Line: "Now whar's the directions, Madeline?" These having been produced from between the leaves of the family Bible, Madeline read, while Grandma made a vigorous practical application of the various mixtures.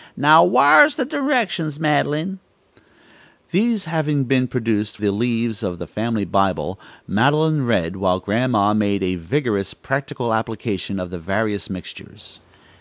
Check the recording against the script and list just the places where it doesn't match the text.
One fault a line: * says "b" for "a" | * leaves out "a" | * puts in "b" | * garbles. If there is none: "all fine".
* leaves out "from between"